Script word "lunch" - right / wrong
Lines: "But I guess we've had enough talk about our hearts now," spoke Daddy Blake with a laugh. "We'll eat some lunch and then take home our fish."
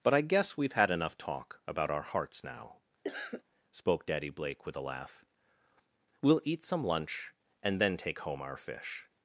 right